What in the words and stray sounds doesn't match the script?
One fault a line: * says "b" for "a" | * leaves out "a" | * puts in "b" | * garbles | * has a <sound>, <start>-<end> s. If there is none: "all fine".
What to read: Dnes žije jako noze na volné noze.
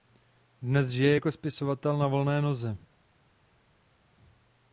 * says "spisovatel" for "noze"